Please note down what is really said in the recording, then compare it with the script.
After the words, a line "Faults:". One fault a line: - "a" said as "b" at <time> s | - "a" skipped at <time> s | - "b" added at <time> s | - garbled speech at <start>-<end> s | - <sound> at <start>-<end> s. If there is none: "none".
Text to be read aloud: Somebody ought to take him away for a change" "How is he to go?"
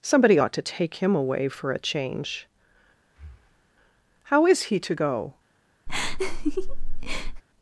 Somebody ought to take him away for a change" "How is he to go?"
Faults:
- breath at 3.0-3.7 s
- laugh at 5.9-7.4 s